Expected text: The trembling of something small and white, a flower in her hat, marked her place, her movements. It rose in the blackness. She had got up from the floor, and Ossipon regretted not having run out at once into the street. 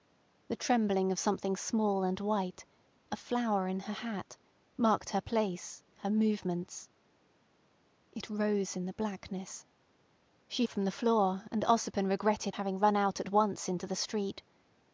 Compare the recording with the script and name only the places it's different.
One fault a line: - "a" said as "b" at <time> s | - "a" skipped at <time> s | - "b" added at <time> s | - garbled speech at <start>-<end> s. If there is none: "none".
- "had got up" skipped at 10.7 s
- "not" skipped at 12.5 s